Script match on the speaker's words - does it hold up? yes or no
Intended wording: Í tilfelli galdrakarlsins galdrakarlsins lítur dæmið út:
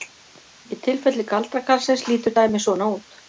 no